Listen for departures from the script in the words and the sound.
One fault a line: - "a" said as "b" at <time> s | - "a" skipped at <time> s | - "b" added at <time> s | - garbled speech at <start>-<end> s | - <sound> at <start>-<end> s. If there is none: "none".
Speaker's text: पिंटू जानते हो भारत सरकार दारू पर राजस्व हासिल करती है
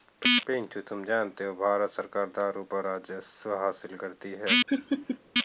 - "तुम" added at 0.8 s
- laugh at 4.7-5.2 s